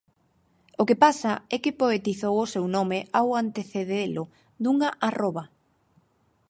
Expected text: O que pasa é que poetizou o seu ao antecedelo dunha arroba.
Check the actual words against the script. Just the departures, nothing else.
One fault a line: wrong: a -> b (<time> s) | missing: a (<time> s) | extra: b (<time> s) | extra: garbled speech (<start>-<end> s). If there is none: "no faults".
extra: nome (2.8 s)